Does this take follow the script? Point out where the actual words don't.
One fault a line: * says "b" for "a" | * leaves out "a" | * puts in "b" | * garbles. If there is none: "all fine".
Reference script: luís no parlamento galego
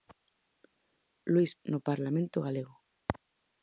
all fine